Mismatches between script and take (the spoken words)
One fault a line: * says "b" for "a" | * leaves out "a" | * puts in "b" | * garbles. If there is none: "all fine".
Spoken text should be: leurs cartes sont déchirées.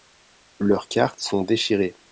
all fine